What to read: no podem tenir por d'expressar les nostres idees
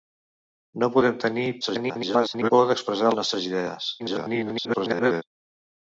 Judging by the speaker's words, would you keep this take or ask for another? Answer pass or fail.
fail